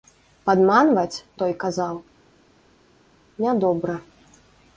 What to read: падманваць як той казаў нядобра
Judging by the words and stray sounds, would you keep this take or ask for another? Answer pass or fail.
fail